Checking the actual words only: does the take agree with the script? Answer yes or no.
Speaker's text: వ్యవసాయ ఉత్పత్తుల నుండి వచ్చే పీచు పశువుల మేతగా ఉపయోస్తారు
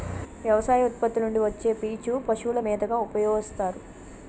yes